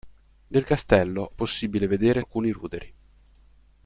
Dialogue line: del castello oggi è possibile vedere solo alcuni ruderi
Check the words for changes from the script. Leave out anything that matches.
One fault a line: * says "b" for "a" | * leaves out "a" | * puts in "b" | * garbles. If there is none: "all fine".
* leaves out "oggi"
* leaves out "solo"